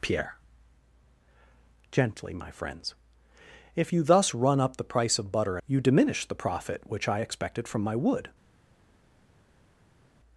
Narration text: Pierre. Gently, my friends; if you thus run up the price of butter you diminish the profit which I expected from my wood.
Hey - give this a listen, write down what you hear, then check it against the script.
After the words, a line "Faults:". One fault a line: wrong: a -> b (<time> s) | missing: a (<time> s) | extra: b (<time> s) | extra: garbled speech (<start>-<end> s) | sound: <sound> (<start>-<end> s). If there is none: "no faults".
Pierre. Gently, my friends; if you thus run up the price of butter you diminish the profit which I expected from my wood.
Faults:
no faults